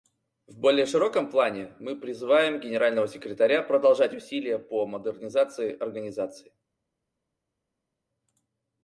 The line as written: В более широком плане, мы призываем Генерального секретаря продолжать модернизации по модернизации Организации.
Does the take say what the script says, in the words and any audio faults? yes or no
no